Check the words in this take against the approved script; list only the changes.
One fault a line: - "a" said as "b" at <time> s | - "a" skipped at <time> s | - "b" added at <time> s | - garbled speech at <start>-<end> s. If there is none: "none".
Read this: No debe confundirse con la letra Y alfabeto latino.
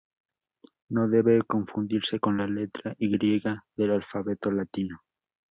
- "del" added at 3.8 s